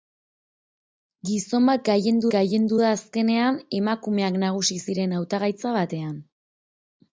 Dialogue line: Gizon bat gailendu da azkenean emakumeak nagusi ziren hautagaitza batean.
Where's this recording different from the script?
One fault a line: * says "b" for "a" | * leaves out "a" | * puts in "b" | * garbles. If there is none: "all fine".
* puts in "gailendu"